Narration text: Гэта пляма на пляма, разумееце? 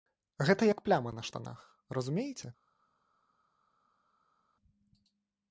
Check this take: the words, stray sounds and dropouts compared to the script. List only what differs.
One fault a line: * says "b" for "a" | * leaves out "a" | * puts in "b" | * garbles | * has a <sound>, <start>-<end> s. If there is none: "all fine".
* puts in "як"
* says "штанах" for "пляма"